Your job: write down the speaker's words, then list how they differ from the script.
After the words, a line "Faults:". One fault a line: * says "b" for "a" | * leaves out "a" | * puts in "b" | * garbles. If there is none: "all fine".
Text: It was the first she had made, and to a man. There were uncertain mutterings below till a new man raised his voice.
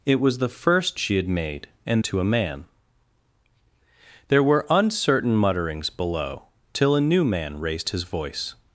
It was the first she had made, and to a man. There were uncertain mutterings below till a new man raised his voice.
Faults:
all fine